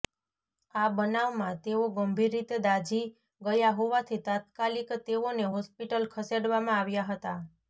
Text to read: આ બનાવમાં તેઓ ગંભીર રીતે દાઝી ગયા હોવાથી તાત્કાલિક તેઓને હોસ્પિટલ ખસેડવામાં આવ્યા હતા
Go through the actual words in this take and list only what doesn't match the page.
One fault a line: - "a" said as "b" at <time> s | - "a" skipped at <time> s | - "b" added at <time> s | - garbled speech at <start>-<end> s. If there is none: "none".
none